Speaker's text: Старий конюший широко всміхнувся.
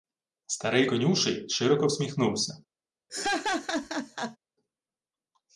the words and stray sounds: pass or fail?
fail